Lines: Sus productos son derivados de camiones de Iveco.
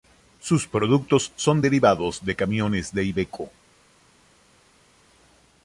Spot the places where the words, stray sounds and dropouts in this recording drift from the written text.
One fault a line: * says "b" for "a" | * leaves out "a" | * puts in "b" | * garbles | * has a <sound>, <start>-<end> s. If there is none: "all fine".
all fine